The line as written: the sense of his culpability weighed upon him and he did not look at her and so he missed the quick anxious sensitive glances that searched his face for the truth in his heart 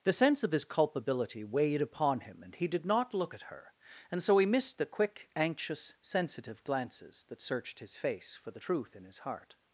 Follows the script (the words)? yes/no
yes